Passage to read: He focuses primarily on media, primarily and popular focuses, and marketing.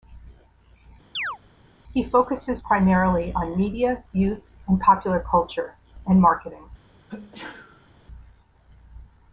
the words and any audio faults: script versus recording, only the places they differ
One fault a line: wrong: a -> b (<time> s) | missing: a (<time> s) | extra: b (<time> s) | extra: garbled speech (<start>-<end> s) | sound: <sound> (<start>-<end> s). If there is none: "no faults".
sound: chirp (1.1-1.4 s)
wrong: primarily -> youth (4.1 s)
wrong: focuses -> culture (5.2 s)
sound: sneeze (7.1-7.9 s)